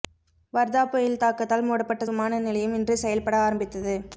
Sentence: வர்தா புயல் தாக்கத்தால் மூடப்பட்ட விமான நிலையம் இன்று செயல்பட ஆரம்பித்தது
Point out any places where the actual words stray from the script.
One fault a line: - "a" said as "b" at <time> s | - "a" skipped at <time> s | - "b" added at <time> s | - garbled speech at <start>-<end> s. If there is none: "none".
none